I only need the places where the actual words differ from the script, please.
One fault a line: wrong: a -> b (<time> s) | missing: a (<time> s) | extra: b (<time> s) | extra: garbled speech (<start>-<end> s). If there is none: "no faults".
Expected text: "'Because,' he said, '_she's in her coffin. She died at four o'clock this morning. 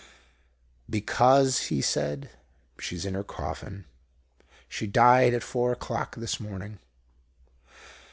no faults